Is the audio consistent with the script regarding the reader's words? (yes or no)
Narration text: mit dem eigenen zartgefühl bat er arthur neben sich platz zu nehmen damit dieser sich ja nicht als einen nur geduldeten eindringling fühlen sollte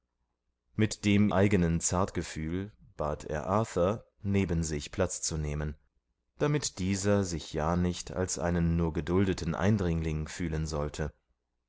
yes